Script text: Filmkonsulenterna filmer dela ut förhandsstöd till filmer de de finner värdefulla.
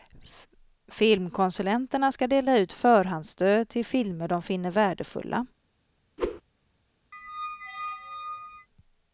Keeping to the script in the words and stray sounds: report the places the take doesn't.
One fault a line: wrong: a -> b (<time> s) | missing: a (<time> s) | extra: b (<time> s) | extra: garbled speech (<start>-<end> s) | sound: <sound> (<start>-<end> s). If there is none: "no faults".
wrong: filmer -> ska (2.1 s)
missing: de (4.4 s)
sound: whoosh (6.2-6.4 s)
sound: squeak (7.1-8.7 s)